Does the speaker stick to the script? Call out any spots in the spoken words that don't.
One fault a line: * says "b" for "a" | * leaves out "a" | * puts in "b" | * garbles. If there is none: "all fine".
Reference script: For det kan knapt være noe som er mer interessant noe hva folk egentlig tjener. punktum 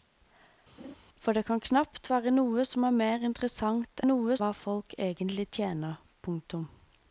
all fine